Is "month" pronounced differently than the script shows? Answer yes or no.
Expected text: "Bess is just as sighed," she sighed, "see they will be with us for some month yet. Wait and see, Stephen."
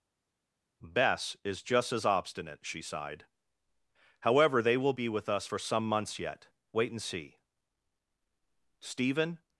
yes